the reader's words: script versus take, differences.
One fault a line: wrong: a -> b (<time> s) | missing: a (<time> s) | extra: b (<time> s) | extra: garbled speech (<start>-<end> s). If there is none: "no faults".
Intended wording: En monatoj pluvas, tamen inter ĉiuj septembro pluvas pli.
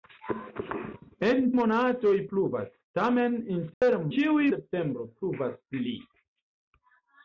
no faults